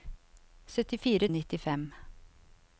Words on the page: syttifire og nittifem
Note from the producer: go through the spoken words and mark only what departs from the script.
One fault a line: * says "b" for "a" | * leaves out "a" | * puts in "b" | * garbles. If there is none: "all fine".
all fine